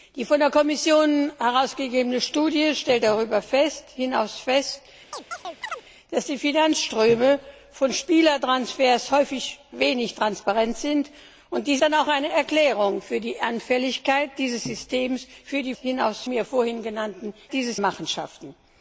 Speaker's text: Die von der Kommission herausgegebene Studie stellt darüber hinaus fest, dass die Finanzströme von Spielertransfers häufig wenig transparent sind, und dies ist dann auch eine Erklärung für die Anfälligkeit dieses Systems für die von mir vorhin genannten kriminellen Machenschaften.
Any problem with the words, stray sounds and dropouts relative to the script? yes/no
yes